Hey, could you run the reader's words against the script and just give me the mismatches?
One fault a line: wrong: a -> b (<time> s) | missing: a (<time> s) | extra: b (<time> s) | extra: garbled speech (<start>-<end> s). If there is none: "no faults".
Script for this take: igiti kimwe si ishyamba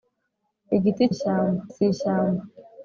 wrong: kimwe -> ishyamba (1.1 s)